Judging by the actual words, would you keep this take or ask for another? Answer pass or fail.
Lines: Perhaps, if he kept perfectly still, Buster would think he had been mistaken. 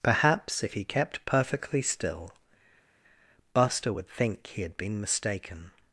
pass